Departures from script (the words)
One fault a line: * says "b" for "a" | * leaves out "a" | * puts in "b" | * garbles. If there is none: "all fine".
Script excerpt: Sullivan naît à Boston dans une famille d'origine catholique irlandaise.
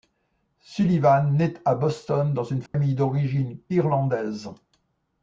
* leaves out "catholique"